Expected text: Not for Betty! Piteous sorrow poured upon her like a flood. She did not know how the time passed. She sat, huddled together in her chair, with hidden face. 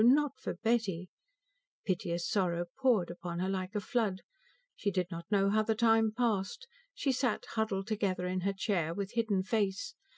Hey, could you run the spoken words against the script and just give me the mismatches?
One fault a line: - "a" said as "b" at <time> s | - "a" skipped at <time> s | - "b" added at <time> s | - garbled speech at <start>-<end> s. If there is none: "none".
none